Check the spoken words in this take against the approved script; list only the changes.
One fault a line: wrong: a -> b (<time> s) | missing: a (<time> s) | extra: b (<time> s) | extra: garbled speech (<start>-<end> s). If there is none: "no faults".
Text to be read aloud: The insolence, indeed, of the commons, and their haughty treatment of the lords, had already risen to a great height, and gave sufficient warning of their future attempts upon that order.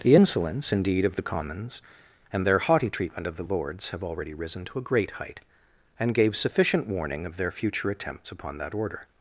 wrong: had -> have (3.9 s)